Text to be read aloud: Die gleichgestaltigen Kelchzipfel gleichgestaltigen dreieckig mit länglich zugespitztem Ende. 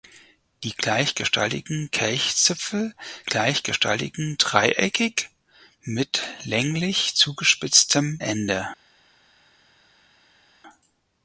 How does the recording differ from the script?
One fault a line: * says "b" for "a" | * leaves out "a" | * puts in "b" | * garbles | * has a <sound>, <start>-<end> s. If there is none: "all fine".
all fine